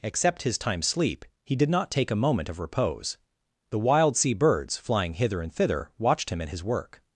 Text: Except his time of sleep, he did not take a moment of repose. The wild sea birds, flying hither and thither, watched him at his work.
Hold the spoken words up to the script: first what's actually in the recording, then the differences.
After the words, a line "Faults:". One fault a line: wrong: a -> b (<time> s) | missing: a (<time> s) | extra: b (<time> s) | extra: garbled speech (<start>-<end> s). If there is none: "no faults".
Except his time sleep, he did not take a moment of repose. The wild sea birds, flying hither and thither, watched him at his work.
Faults:
missing: of (0.8 s)